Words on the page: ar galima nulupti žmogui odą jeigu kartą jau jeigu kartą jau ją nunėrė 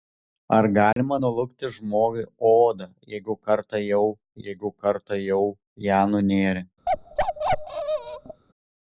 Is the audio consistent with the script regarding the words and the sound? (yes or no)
no